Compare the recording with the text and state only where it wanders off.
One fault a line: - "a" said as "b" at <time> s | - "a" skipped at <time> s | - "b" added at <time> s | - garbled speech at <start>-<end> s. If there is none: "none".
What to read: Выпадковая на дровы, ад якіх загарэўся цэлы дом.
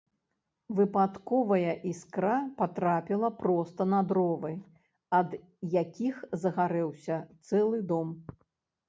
- "іскра патрапіла проста" added at 1.9 s